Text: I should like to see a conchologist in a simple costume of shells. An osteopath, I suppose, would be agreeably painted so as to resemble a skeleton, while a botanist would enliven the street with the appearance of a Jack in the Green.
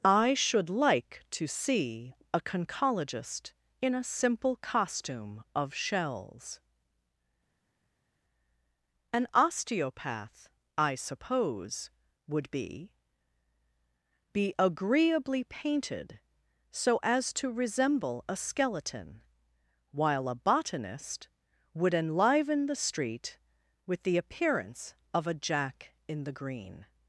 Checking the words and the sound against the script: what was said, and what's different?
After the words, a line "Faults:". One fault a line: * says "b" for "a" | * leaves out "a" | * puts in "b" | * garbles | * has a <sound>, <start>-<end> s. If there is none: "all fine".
I should like to see a conchologist in a simple costume of shells. An osteopath, I suppose, would be be agreeably painted so as to resemble a skeleton, while a botanist would enliven the street with the appearance of a Jack in the Green.
Faults:
* puts in "be"